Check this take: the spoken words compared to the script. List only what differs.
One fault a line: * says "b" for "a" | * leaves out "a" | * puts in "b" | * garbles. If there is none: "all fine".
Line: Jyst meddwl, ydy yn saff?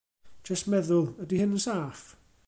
* puts in "hyn"